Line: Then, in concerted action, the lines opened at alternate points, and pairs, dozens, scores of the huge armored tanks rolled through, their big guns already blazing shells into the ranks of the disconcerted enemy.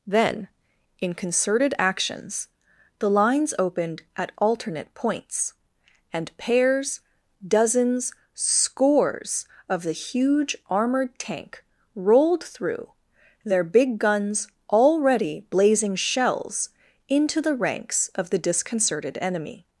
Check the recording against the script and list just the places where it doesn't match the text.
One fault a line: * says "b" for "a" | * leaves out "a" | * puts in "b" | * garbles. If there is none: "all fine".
* says "actions" for "action"
* says "tank" for "tanks"